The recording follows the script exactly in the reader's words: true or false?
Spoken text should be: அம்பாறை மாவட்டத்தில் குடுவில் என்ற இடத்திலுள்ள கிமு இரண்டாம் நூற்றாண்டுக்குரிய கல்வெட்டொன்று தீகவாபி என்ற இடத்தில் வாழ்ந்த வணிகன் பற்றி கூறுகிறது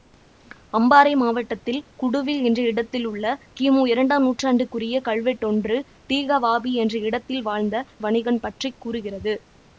true